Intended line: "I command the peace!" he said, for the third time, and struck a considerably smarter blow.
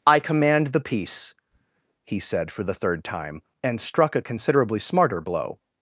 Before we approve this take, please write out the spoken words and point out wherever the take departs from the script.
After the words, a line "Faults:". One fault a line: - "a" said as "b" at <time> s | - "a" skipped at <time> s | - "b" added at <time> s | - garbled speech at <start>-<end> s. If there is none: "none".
"I command the peace!" he said, for the third time, and struck a considerably smarter blow.
Faults:
none